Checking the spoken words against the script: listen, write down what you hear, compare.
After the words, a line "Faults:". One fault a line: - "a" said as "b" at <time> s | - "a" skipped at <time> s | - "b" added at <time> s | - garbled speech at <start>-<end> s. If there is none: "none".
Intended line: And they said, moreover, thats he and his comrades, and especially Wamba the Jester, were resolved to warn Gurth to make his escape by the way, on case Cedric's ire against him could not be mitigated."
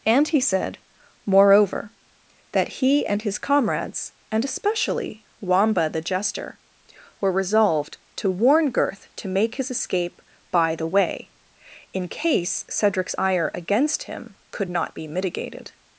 And he said, moreover, that he and his comrades, and especially Wamba the Jester, were resolved to warn Gurth to make his escape by the way, in case Cedric's ire against him could not be mitigated."
Faults:
- "they" said as "he" at 0.3 s
- "thats" said as "that" at 2.5 s
- "on" said as "in" at 11.9 s